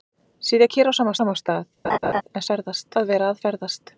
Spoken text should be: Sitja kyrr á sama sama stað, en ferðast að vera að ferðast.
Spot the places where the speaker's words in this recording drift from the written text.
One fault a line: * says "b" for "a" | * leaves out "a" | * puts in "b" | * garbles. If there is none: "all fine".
all fine